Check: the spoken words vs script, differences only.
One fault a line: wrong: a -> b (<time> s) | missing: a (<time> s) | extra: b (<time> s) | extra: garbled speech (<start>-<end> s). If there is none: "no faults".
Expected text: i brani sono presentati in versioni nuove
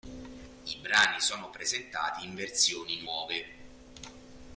no faults